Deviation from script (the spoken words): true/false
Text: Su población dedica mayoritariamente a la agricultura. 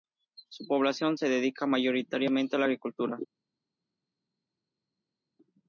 true